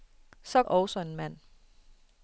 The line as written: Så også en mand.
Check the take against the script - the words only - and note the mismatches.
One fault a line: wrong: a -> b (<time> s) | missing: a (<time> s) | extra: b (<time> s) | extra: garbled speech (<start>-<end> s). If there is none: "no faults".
no faults